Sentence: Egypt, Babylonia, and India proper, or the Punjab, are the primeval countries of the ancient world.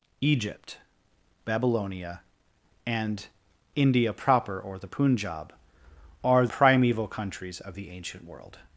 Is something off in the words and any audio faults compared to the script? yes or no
yes